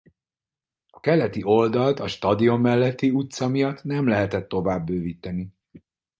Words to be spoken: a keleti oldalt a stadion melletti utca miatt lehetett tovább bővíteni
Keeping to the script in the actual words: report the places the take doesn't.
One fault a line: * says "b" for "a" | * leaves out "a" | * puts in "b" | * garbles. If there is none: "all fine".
* puts in "nem"